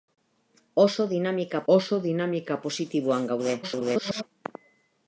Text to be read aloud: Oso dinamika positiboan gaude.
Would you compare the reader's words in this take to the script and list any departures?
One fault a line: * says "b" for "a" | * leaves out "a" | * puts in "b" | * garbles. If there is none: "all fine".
* puts in "oso dinamika"
* garbles